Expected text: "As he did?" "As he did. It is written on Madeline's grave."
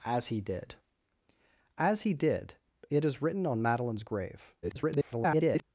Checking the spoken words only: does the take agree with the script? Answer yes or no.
no